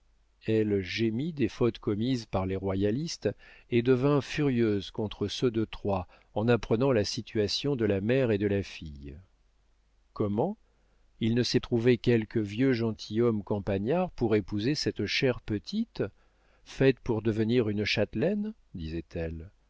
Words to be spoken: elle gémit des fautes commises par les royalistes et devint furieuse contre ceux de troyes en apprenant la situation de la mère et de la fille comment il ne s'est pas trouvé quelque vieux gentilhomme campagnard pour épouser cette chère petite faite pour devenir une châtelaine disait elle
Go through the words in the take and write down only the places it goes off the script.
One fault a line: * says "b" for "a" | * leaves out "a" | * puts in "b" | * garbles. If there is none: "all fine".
* leaves out "pas"